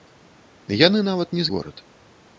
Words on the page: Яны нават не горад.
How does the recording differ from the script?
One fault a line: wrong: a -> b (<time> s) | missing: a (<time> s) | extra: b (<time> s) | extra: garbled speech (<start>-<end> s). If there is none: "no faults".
no faults